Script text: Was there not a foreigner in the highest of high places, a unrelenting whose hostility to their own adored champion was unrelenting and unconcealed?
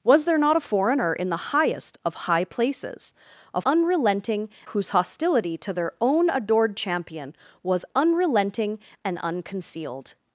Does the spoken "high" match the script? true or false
true